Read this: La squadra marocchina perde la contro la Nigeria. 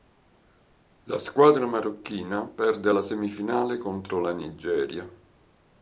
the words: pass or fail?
fail